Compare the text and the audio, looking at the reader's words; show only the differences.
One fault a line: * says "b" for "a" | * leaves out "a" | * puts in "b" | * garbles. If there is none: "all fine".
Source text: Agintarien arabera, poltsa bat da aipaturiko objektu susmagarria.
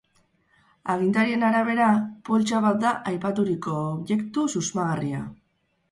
all fine